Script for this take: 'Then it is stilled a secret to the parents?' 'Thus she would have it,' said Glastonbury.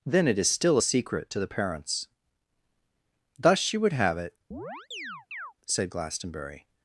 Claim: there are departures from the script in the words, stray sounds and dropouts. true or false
true